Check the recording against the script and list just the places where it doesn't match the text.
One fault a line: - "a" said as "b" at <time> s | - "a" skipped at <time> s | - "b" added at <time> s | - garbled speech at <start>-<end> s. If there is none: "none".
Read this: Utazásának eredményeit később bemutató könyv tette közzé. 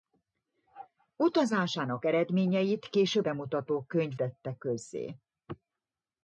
none